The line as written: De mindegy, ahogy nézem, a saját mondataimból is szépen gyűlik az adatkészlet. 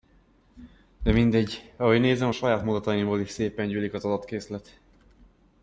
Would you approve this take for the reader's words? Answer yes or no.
yes